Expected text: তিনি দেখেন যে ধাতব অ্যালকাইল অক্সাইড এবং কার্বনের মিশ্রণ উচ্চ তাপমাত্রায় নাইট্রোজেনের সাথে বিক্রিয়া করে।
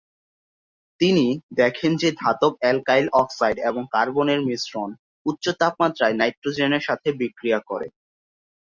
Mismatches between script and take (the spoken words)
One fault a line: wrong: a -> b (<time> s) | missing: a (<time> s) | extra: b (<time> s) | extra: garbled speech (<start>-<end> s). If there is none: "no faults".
no faults